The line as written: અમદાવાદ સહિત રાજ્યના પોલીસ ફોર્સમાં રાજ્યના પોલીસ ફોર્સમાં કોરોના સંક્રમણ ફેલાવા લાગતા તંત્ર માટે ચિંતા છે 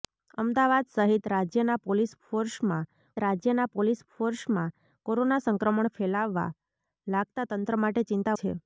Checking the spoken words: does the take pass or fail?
pass